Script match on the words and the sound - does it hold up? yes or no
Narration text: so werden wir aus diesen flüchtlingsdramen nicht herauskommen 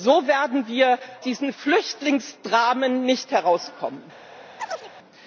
no